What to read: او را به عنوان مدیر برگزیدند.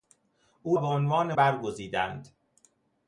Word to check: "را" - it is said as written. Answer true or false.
false